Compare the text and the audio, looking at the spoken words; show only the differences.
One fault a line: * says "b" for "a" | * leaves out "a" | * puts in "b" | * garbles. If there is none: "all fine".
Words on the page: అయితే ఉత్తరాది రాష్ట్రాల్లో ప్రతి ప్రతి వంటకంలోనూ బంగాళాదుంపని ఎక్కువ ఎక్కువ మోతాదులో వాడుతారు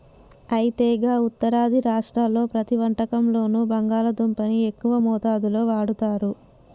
* puts in "గా"
* leaves out "ప్రతి"
* leaves out "ఎక్కువ"